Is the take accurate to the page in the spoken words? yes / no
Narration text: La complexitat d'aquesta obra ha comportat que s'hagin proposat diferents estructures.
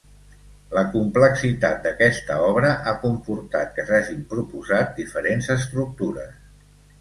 yes